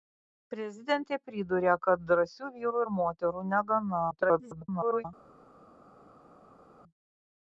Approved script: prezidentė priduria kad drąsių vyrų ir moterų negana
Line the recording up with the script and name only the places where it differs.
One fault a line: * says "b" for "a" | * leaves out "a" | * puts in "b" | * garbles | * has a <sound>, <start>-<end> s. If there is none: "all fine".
* garbles